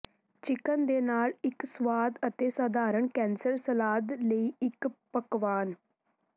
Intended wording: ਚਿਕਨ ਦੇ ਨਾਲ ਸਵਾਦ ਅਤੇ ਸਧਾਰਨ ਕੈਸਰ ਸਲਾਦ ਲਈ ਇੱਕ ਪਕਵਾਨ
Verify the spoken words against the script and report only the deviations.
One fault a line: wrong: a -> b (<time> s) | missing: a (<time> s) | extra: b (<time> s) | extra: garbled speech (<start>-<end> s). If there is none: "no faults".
extra: ਇੱਕ (1.4 s)